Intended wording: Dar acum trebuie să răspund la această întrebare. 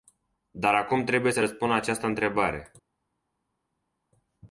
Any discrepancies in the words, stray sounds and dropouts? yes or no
no